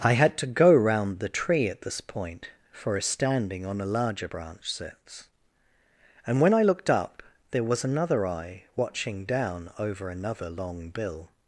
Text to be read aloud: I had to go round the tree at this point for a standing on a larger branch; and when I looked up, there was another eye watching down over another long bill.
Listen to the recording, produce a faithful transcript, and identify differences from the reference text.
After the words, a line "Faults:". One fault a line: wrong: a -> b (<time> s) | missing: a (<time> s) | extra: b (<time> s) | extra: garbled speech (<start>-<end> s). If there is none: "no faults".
I had to go round the tree at this point for a standing on a larger branch; sits and when I looked up, there was another eye watching down over another long bill.
Faults:
extra: sits (4.7 s)